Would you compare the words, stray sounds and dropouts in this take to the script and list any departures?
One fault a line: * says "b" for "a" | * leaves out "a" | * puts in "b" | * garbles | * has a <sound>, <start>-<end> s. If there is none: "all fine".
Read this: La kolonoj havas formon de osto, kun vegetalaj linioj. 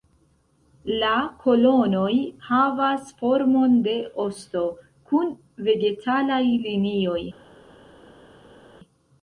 all fine